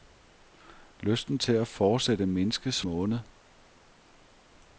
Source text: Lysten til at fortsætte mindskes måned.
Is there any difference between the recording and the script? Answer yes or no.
no